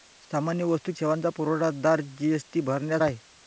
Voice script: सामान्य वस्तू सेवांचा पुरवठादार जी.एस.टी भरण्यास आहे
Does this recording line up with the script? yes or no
yes